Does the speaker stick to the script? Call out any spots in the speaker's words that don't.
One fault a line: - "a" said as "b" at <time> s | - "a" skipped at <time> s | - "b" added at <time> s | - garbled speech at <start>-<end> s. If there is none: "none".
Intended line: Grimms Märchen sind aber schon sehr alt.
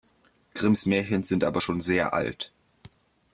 none